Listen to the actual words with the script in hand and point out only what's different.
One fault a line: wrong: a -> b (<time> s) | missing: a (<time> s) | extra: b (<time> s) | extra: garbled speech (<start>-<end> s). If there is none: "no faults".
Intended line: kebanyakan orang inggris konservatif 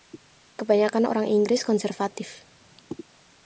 no faults